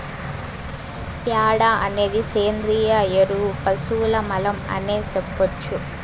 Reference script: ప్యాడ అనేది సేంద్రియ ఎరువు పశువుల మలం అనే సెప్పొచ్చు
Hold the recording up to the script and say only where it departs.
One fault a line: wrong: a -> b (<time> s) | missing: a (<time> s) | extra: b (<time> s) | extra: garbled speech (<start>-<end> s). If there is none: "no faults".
no faults